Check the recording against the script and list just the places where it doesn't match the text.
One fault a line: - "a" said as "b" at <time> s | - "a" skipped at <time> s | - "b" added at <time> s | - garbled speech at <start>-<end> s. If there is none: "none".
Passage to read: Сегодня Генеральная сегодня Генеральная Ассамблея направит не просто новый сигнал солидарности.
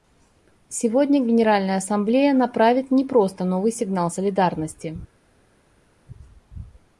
- "сегодня Генеральная" skipped at 1.8 s